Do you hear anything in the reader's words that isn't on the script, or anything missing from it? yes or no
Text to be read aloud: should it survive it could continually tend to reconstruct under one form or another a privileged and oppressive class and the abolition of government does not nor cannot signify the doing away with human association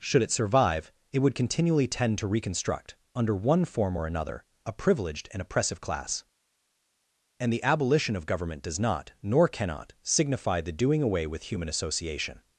yes